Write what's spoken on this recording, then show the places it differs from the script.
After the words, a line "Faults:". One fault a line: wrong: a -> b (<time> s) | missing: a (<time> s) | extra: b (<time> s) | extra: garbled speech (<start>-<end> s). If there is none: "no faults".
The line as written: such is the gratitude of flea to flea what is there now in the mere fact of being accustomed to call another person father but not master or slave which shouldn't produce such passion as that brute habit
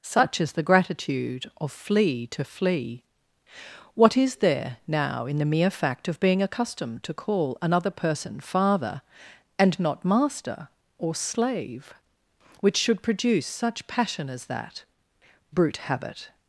such is the gratitude of flea to flea what is there now in the mere fact of being accustomed to call another person father and not master or slave which should produce such passion as that brute habit
Faults:
wrong: but -> and (9.6 s)
wrong: shouldn't -> should (12.8 s)